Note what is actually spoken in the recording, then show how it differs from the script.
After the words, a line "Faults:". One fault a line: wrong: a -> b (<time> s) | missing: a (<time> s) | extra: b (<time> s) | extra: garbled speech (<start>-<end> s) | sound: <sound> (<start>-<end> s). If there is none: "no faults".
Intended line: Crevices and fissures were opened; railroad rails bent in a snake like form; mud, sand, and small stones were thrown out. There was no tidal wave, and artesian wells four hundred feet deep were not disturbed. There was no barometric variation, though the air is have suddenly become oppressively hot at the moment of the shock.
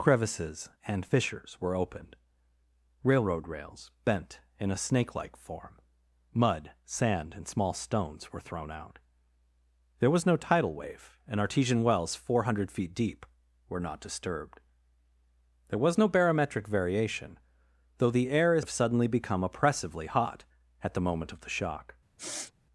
Crevices and fissures were opened; railroad rails bent in a snake like form; mud, sand, and small stones were thrown out. There was no tidal wave, and artesian wells four hundred feet deep were not disturbed. There was no barometric variation, though the air is have suddenly become oppressively hot at the moment of the shock.
Faults:
sound: sniff (22.2-22.5 s)